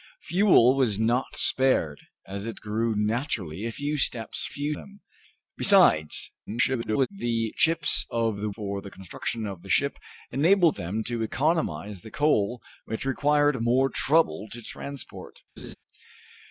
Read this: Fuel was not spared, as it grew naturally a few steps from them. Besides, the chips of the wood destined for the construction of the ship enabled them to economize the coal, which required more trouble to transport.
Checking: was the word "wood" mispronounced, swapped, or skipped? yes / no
yes